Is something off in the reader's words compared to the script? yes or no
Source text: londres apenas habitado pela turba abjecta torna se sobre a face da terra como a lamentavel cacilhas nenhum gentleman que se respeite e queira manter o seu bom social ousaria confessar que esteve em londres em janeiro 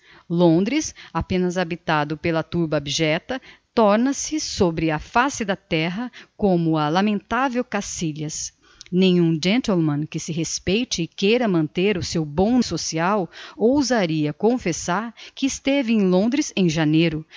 no